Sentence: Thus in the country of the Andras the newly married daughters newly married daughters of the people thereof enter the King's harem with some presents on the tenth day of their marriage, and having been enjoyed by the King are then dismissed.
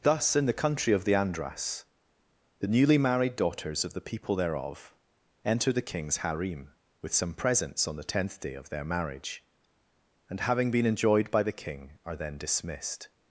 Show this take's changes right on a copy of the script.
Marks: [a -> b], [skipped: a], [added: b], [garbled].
Thus in the country of the Andras the newly married daughters [skipped: newly married daughters] of the people thereof enter the King's harem with some presents on the tenth day of their marriage, and having been enjoyed by the King are then dismissed.